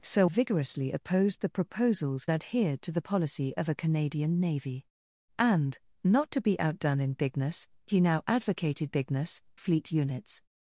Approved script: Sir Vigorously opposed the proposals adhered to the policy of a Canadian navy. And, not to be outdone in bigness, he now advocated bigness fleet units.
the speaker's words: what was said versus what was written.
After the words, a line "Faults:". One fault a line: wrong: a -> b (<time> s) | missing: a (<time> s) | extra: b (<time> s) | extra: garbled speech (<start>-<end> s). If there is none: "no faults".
Sir Vigorously opposed the proposals adhered to the policy of a Canadian navy. And, not to be outdone in bigness, he now advocated bigness fleet units.
Faults:
no faults